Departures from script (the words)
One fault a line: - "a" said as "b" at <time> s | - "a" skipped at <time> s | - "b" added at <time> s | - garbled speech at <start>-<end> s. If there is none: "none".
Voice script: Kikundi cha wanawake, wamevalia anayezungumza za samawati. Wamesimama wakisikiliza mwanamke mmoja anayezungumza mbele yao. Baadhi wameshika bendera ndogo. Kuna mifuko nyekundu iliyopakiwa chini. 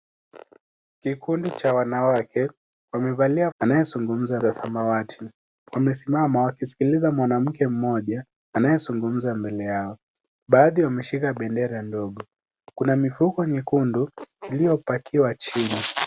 none